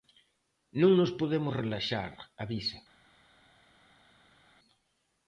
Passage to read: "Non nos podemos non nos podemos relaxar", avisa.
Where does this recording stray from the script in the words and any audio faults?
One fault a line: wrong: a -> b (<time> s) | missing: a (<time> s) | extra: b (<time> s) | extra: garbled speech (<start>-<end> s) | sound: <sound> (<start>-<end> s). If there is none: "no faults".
missing: non nos podemos (1.6 s)